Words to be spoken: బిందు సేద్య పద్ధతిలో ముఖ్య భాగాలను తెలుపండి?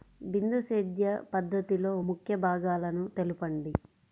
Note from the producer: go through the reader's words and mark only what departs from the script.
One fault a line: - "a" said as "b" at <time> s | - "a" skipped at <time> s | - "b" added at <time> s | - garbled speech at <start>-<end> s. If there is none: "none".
none